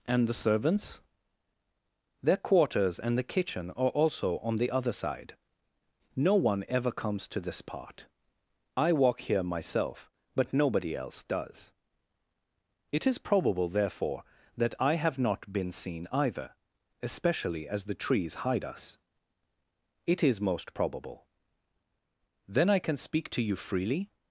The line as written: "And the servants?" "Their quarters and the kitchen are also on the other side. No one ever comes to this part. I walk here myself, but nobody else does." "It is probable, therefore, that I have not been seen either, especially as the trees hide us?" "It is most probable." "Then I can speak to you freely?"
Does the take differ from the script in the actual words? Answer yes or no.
no